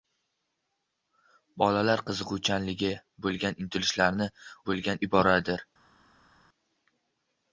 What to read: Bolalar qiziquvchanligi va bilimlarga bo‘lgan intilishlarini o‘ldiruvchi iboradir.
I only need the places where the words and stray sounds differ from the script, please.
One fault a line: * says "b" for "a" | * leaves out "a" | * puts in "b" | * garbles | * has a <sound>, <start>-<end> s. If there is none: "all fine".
* leaves out "va bilimlarga"
* says "bo‘lgan" for "o‘ldiruvchi"